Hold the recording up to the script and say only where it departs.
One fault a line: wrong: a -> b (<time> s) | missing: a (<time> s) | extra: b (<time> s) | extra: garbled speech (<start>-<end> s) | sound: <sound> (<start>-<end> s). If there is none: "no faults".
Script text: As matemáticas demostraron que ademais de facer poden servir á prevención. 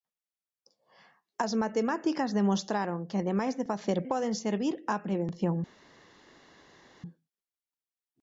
no faults